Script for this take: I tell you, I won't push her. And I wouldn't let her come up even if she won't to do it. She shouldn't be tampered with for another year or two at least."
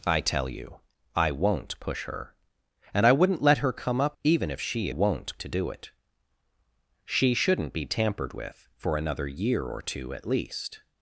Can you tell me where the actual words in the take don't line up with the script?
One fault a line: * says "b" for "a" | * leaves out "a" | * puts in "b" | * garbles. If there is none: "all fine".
all fine